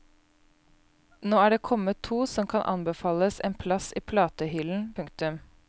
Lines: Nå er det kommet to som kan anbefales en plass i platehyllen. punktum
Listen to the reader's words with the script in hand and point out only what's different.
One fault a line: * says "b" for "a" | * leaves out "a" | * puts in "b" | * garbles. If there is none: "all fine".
all fine